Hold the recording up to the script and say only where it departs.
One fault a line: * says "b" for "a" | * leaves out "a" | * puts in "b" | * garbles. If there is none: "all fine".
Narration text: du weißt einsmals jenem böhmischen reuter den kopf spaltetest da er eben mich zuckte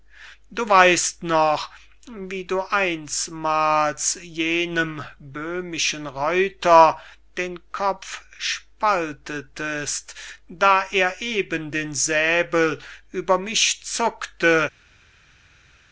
* puts in "noch wie du"
* puts in "den säbel über"